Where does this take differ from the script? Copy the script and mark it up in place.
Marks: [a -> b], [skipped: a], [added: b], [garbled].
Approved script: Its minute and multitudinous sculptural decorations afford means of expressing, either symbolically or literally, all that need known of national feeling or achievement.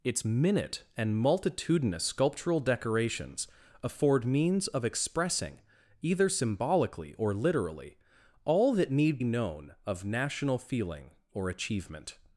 Its minute and multitudinous sculptural decorations afford means of expressing, either symbolically or literally, all that need known of national feeling or achievement.